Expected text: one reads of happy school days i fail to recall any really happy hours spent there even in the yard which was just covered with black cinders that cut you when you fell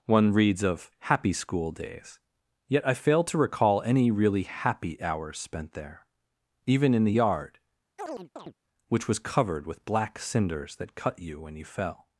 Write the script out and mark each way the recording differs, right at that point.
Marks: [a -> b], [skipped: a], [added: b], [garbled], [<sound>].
one reads of happy school days [added: yet] i fail to recall any really happy hours spent there even in the yard [chirp] which was [skipped: just] covered with black cinders that cut you when you fell